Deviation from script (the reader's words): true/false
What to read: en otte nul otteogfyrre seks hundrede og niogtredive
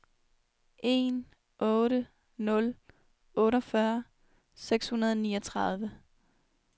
false